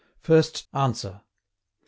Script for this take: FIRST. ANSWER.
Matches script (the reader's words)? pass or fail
pass